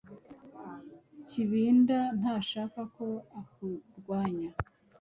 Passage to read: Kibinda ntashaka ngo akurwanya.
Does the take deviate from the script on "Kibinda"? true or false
false